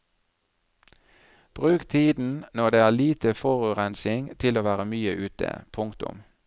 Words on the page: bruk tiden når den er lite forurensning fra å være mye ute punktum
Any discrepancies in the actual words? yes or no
yes